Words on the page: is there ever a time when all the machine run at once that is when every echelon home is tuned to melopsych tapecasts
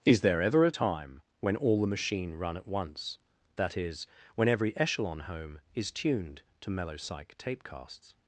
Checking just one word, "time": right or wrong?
right